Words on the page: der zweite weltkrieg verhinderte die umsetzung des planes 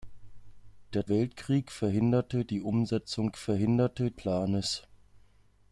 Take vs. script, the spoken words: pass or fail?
fail